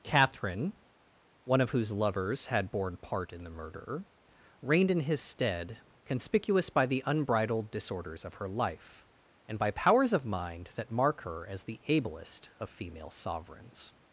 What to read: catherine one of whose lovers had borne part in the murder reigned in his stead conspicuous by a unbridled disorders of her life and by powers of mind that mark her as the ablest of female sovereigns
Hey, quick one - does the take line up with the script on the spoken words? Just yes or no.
no